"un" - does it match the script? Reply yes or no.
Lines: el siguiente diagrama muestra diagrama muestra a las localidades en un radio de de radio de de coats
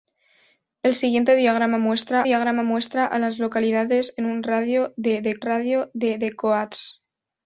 yes